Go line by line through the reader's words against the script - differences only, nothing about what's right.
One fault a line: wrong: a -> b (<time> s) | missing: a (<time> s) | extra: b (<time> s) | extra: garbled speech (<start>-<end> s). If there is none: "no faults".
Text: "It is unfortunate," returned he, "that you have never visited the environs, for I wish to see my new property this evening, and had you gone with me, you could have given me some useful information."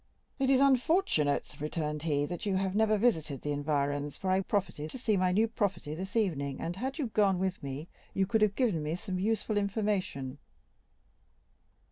wrong: wish -> property (4.4 s)